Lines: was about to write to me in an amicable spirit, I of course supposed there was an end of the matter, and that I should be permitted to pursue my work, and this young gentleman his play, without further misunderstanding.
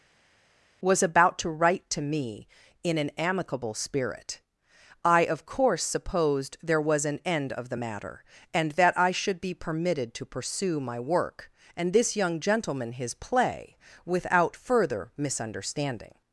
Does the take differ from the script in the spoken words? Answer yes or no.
no